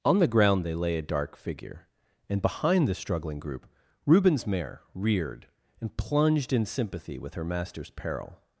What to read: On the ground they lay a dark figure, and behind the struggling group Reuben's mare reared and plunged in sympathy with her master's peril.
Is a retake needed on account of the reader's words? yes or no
no